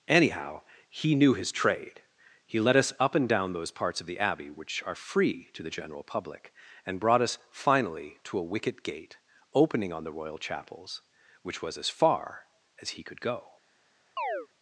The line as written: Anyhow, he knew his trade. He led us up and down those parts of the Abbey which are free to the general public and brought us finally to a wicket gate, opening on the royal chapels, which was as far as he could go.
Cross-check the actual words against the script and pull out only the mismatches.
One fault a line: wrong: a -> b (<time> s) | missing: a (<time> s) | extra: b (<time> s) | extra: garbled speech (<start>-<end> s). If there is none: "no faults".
no faults